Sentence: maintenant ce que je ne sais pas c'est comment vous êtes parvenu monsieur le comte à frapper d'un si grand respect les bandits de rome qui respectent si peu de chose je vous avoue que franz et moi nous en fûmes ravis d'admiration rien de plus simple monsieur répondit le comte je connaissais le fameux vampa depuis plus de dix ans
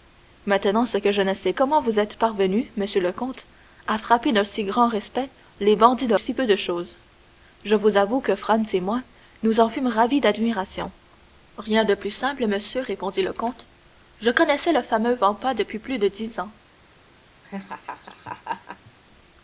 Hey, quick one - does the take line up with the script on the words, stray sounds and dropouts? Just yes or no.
no